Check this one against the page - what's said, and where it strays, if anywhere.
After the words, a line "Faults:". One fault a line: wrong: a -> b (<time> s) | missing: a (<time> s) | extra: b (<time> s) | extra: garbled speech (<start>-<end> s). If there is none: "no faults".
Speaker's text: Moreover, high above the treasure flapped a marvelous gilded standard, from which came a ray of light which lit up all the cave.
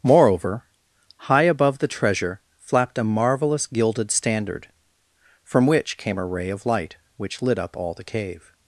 Moreover, high above the treasure flapped a marvelous gilded standard, from which came a ray of light which lit up all the cave.
Faults:
no faults